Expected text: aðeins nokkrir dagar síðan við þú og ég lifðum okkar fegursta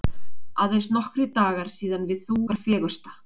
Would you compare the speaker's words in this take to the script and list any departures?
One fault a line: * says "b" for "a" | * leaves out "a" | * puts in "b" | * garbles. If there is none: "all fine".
* leaves out "og ég lifðum"